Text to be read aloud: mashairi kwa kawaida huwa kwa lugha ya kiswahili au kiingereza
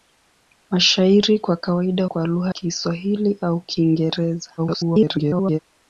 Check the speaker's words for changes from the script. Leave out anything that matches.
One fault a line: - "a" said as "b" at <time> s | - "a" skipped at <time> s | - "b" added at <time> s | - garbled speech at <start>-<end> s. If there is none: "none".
- "huwa" skipped at 2.0 s
- "ya" skipped at 2.5 s
- garbled speech at 4.6-5.6 s